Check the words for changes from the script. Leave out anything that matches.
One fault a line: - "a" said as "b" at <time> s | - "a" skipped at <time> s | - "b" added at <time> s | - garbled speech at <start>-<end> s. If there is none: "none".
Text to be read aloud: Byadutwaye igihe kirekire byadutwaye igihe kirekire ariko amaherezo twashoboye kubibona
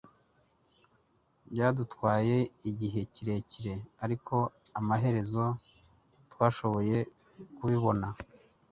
- "byadutwaye igihe kirekire" skipped at 3.7 s